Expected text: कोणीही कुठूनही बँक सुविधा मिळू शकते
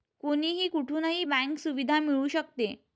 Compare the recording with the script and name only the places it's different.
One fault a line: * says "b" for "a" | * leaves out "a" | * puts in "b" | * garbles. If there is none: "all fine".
all fine